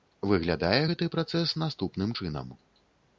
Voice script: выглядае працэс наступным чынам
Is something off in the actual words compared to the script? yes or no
yes